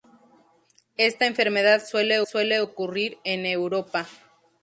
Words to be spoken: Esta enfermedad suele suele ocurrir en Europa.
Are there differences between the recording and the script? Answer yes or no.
no